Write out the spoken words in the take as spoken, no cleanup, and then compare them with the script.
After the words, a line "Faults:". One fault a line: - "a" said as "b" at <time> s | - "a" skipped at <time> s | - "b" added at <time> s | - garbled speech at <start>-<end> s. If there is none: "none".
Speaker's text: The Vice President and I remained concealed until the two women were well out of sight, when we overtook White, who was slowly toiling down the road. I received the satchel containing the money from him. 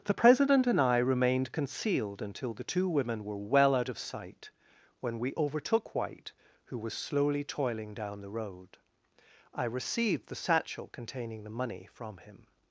The President and I remained concealed until the two women were well out of sight, when we overtook White, who was slowly toiling down the road. I received the satchel containing the money from him.
Faults:
- "Vice" skipped at 0.1 s